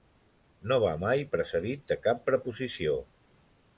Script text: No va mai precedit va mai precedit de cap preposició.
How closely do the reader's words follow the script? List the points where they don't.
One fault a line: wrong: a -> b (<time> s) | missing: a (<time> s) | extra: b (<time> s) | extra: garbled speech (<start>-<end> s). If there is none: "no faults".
missing: va mai precedit (1.8 s)